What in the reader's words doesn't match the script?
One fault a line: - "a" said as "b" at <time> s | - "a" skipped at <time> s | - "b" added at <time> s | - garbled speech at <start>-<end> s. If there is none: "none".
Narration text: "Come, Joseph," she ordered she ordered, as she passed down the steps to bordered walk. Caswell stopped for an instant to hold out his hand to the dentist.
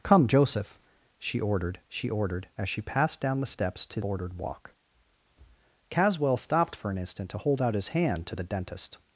none